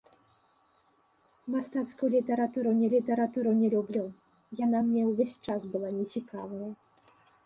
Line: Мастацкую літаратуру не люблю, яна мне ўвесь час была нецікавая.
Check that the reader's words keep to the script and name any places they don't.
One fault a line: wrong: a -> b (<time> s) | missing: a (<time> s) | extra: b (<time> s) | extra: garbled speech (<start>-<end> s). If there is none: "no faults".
extra: літаратуру не (2.9 s)